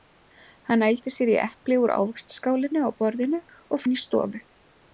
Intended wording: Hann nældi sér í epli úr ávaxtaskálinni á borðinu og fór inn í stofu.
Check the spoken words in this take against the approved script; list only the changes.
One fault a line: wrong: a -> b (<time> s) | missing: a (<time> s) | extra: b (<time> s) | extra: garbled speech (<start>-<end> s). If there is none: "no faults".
missing: fór (3.9 s)